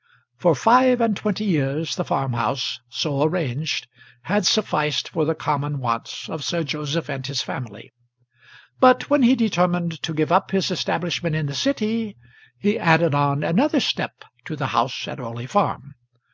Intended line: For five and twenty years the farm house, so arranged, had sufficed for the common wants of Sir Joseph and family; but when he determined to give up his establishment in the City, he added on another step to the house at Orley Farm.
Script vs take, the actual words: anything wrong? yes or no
yes